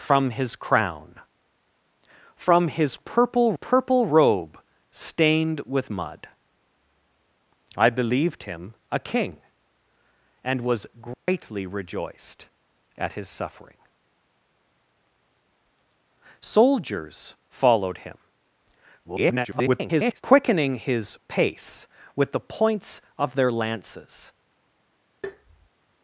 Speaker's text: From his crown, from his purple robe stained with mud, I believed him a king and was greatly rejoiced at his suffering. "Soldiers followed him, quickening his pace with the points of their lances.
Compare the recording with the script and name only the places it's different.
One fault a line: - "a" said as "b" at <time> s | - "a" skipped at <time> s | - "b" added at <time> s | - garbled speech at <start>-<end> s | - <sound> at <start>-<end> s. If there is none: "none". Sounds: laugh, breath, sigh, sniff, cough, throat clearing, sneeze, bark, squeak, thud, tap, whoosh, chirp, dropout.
- "purple" added at 3.5 s
- dropout at 11.1-11.3 s
- garbled speech at 19.0-20.2 s
- tap at 25.2-25.7 s